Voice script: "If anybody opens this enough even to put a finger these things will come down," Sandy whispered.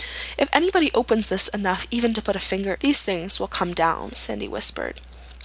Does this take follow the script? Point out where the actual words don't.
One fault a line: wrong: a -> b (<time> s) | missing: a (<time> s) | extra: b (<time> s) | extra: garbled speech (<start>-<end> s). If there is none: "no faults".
no faults